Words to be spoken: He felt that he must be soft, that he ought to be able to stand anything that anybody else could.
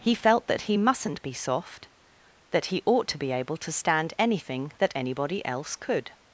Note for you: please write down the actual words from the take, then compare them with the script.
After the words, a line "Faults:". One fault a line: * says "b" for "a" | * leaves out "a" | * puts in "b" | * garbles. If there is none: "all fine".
He felt that he mustn't be soft, that he ought to be able to stand anything that anybody else could.
Faults:
* says "mustn't" for "must"